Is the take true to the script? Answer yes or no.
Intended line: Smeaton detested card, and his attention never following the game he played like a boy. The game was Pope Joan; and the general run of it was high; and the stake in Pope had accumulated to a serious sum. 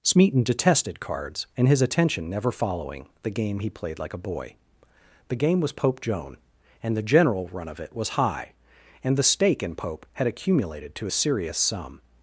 no